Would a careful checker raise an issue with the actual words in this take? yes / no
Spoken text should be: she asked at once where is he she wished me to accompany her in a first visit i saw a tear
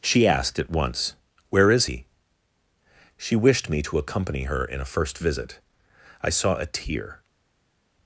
no